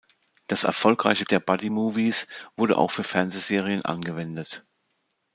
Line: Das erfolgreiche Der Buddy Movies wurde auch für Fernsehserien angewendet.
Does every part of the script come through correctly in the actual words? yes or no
yes